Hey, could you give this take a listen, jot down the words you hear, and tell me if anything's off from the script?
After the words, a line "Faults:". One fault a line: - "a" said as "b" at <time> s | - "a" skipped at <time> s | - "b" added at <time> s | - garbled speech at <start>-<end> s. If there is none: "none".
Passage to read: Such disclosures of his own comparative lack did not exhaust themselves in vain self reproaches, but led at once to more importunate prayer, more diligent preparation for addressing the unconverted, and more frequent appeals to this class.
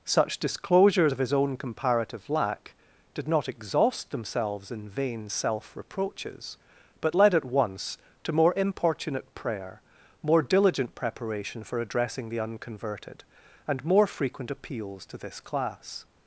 Such disclosures of his own comparative lack did not exhaust themselves in vain self reproaches, but led at once to more importunate prayer, more diligent preparation for addressing the unconverted, and more frequent appeals to this class.
Faults:
none